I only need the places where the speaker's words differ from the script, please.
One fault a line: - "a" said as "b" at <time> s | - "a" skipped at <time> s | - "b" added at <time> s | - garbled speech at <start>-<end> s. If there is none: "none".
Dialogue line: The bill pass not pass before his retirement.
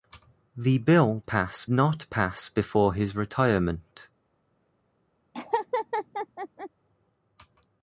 none